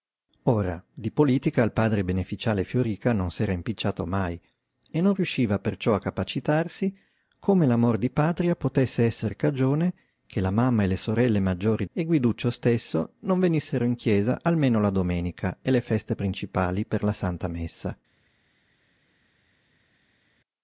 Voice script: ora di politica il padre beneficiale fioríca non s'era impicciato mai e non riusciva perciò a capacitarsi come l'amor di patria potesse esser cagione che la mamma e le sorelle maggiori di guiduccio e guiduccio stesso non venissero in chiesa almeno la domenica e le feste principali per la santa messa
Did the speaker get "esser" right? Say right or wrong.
right